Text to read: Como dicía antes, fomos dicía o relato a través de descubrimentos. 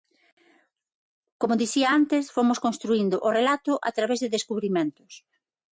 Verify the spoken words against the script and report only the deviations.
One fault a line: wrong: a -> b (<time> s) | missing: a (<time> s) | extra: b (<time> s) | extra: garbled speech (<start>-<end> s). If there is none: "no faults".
wrong: dicía -> construíndo (2.7 s)